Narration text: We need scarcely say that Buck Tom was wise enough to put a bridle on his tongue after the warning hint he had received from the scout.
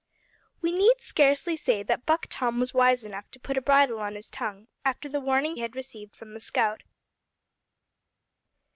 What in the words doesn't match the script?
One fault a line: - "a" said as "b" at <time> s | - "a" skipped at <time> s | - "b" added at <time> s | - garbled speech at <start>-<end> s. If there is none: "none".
- "hint he" skipped at 5.6 s